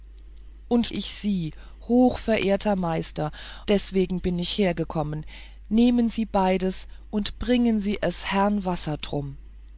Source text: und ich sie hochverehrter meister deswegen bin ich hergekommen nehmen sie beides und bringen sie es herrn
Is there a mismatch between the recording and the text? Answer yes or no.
no